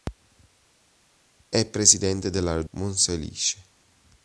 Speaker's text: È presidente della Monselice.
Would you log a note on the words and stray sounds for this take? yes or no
no